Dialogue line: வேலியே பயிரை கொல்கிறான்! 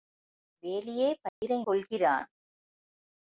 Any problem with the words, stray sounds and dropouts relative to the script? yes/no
yes